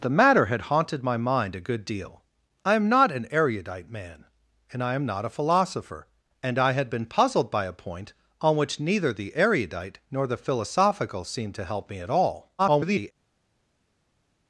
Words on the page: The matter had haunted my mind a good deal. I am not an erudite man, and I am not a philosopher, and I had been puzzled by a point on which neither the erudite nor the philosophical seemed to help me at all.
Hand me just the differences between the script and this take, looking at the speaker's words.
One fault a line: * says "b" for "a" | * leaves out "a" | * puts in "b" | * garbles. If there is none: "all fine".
* garbles